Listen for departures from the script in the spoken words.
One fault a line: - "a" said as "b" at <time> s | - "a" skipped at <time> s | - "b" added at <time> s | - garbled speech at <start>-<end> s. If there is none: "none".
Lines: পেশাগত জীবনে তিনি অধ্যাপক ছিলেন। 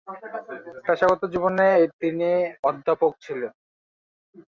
none